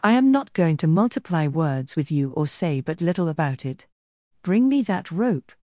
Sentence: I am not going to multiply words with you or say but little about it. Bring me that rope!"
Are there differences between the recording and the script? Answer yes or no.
no